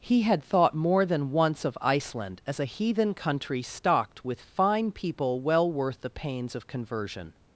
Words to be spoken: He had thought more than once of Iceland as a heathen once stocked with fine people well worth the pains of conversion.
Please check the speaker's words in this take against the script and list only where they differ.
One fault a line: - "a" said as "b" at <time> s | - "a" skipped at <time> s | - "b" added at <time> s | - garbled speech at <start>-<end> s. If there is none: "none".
- "once" said as "country" at 3.1 s